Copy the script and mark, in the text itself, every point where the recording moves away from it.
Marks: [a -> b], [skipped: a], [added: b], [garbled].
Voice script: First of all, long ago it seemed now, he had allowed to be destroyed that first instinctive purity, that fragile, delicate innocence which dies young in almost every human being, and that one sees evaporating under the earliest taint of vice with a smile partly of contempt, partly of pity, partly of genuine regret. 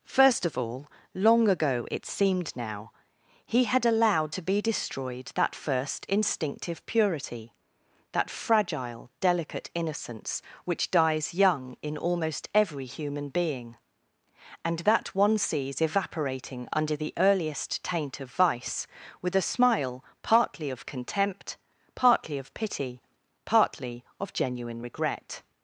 First of all, long ago it seemed now, he had allowed to be destroyed that first instinctive purity, that fragile, delicate innocence which dies young in almost every human being, and that one sees evaporating under the earliest taint of vice with a smile partly of contempt, partly of pity, partly of genuine regret.